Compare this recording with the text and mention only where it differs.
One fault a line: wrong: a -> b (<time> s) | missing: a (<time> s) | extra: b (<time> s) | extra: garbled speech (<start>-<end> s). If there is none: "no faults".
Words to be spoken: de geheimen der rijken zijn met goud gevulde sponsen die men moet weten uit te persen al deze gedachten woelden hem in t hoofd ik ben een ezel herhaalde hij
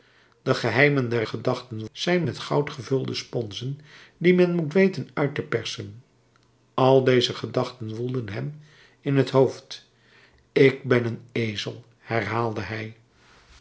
wrong: rijken -> gedachten (1.2 s)